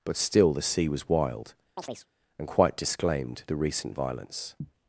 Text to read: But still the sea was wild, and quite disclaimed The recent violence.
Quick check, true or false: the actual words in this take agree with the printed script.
true